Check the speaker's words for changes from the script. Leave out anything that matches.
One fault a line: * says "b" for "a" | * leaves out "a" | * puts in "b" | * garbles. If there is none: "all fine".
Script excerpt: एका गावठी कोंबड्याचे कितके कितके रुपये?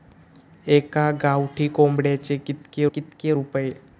all fine